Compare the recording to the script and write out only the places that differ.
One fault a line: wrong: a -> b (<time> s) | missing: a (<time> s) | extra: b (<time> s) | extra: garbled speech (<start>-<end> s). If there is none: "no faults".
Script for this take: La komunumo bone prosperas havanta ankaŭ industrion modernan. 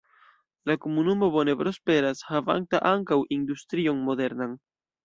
no faults